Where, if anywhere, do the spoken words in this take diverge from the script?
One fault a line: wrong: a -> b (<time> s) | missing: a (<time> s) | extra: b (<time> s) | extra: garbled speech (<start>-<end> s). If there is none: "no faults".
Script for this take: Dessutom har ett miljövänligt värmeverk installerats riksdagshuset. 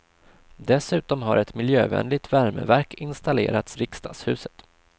no faults